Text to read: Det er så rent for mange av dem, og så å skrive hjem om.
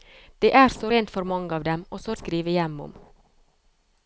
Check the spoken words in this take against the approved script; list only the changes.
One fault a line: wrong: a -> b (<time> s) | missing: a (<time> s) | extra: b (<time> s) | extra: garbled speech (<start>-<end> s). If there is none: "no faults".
no faults